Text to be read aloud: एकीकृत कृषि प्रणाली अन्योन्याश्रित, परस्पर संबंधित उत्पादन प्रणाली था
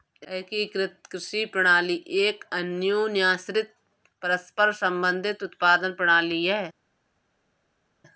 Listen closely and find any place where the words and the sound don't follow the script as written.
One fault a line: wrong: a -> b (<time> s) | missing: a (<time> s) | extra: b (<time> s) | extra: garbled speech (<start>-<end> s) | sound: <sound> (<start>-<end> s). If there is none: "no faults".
extra: एक (2.2 s)
wrong: था -> है (6.5 s)